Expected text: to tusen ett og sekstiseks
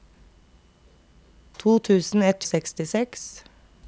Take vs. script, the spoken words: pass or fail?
pass